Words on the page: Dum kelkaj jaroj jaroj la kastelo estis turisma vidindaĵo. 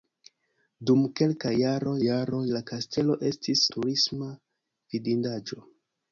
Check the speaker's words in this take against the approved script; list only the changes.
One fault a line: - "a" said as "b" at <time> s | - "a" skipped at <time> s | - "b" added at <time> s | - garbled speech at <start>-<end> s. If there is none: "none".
none